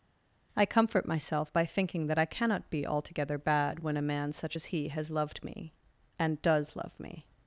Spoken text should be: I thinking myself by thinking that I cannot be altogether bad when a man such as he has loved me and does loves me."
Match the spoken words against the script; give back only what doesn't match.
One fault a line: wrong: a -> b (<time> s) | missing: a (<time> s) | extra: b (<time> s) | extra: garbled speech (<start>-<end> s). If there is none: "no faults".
wrong: thinking -> comfort (0.7 s)
wrong: loves -> love (6.8 s)